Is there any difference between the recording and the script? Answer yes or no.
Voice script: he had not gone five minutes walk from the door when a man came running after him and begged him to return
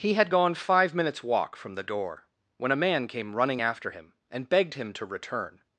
yes